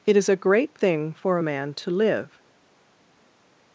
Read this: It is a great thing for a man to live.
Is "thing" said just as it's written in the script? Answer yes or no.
yes